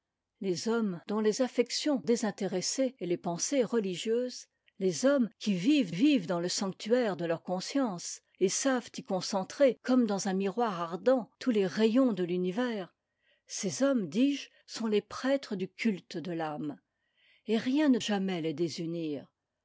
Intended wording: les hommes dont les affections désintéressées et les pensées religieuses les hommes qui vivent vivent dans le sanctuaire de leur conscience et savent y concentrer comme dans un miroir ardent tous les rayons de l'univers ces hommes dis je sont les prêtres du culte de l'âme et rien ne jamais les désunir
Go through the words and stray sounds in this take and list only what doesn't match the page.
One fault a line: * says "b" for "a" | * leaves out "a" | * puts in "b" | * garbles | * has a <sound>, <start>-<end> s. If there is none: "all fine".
all fine